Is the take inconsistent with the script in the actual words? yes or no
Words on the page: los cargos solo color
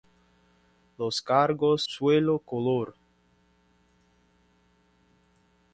no